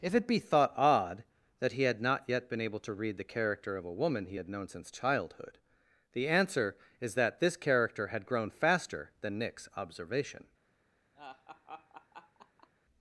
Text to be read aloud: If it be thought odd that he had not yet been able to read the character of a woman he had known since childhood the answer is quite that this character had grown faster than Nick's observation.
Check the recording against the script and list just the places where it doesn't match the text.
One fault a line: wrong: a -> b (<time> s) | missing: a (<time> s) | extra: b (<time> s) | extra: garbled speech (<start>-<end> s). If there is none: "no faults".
missing: quite (7.1 s)